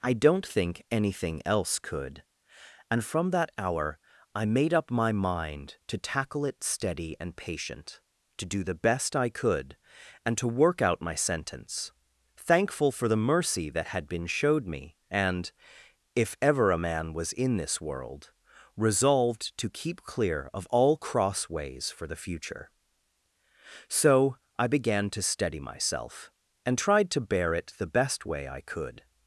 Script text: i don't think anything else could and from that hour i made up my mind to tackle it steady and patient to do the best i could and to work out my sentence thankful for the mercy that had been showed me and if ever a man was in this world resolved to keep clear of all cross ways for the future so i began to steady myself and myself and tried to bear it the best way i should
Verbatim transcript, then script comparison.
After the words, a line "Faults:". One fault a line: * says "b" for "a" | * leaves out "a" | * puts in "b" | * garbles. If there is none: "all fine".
i don't think anything else could and from that hour i made up my mind to tackle it steady and patient to do the best i could and to work out my sentence thankful for the mercy that had been showed me and if ever a man was in this world resolved to keep clear of all cross ways for the future so i began to steady myself and tried to bear it the best way i could
Faults:
* leaves out "myself and"
* says "could" for "should"